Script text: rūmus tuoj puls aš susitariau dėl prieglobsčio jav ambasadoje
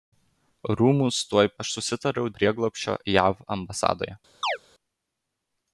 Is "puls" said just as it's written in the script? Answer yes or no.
no